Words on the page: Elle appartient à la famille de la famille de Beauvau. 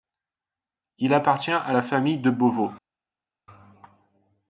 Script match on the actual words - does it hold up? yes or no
no